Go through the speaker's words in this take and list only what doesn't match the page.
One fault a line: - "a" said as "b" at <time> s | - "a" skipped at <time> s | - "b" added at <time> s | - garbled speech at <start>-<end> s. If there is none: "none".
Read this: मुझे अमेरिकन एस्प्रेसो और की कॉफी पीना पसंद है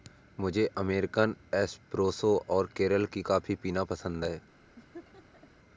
- "केरल" added at 2.8 s